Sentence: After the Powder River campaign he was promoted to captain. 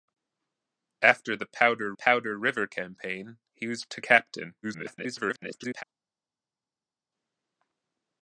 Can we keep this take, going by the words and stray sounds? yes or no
no